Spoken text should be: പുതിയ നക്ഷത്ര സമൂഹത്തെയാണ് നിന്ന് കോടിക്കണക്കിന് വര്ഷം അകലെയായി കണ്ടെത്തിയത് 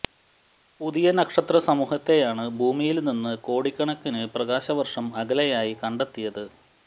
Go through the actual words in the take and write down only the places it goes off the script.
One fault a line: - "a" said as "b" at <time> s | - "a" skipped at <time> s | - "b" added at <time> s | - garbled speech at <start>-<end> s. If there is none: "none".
- "ഭൂമിയില്" added at 2.6 s
- "പ്രകാശ" added at 4.3 s